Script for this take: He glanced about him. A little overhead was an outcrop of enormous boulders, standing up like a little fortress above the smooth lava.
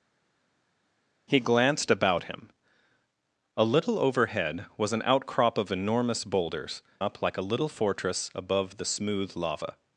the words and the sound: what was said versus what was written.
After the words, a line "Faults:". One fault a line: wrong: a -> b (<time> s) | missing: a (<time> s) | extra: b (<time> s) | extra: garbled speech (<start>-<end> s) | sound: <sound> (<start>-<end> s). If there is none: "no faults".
He glanced about him. A little overhead was an outcrop of enormous boulders, up like a little fortress above the smooth lava.
Faults:
missing: standing (6.8 s)